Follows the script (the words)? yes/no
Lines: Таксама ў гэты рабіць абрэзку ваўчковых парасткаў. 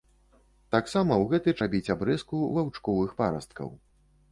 yes